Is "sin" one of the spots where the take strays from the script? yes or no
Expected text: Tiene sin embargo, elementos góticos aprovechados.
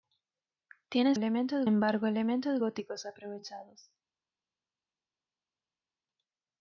yes